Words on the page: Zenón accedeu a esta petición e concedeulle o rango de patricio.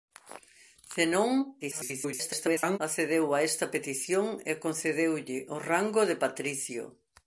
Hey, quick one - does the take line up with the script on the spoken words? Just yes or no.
no